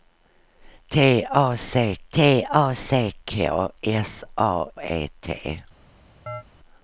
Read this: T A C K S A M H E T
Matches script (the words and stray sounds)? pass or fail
fail